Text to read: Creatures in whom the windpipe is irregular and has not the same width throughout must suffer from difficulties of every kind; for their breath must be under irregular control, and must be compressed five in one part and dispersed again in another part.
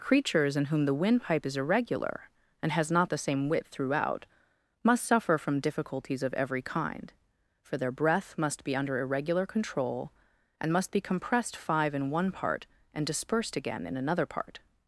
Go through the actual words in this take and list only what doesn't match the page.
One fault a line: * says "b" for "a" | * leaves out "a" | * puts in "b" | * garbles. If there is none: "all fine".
all fine